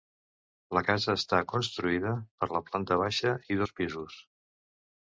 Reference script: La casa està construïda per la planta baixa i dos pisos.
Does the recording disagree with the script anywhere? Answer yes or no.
no